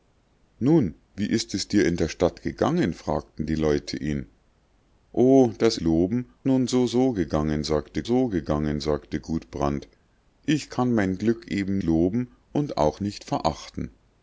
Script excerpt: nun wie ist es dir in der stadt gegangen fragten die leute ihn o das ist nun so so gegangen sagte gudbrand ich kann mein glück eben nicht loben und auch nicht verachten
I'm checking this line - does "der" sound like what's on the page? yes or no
yes